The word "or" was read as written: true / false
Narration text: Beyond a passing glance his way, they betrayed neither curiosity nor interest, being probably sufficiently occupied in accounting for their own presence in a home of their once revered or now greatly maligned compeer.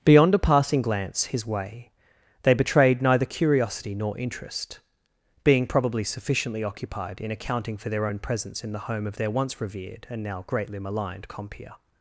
false